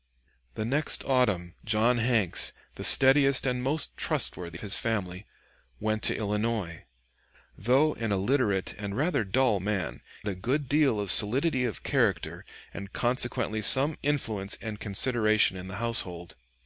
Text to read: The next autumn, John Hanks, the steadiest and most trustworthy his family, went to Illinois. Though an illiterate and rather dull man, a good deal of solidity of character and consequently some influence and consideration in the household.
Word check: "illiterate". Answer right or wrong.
right